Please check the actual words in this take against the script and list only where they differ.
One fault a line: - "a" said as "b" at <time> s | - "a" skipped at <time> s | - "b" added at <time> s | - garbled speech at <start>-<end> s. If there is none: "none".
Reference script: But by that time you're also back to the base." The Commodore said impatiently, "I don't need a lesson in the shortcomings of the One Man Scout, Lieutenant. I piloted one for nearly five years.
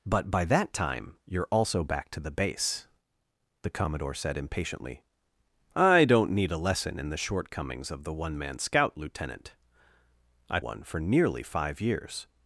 - "piloted" skipped at 10.6 s